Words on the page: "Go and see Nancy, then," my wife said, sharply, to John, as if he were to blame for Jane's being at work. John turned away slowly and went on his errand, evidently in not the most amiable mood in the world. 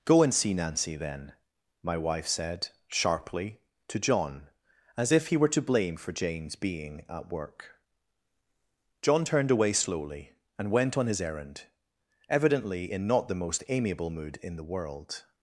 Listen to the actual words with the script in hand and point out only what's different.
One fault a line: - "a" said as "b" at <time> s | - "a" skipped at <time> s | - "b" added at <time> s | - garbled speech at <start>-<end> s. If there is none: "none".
none